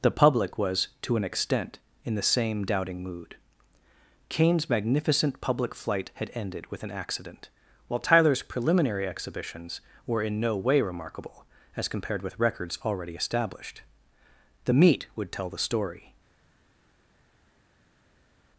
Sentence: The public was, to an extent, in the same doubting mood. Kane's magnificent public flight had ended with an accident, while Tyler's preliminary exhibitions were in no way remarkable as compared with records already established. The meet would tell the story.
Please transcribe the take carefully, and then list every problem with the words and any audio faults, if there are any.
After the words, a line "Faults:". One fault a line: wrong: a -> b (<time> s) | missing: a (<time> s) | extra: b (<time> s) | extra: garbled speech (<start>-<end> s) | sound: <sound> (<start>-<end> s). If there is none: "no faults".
The public was, to an extent, in the same doubting mood. Kane's magnificent public flight had ended with an accident, while Tyler's preliminary exhibitions were in no way remarkable as compared with records already established. The meet would tell the story.
Faults:
no faults